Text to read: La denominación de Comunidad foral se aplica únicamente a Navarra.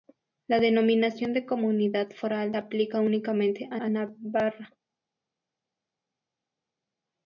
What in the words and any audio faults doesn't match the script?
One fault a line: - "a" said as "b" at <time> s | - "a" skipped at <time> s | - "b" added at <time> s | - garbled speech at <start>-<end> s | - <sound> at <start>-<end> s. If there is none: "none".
- "se" skipped at 2.5 s
- "a" added at 3.8 s